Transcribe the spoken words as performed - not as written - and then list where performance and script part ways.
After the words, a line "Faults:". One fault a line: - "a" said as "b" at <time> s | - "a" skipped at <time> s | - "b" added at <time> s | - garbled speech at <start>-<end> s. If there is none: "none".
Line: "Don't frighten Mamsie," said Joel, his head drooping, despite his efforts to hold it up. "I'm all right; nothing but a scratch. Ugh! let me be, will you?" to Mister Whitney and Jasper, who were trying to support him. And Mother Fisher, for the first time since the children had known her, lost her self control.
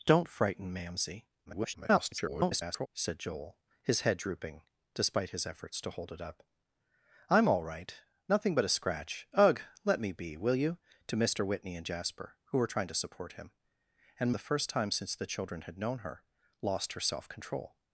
"Don't frighten Mamsie," [garbled] said Joel, his head drooping, despite his efforts to hold it up. "I'm all right; nothing but a scratch. Ugh! let me be, will you?" to Mister Whitney and Jasper, who were trying to support him. And The first time since the children had known her, lost her self control.
Faults:
- garbled speech at 1.5-2.9 s
- "Mother Fisher for" skipped at 14.3 s